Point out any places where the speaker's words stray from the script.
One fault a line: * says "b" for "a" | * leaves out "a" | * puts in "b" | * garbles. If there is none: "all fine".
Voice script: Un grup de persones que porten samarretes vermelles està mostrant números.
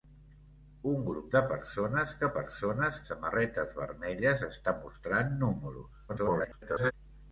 * says "persones" for "porten"
* garbles